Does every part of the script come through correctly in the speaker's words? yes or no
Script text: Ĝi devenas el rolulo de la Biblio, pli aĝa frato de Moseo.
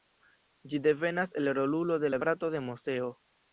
no